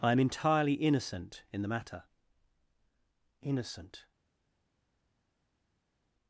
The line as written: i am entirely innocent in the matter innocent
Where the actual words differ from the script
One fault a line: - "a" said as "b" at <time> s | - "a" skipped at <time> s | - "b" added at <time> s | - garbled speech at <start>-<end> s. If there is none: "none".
none